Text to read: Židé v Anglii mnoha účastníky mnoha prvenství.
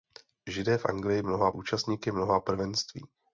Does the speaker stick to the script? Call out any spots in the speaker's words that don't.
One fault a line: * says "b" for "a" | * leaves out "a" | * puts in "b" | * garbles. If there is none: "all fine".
all fine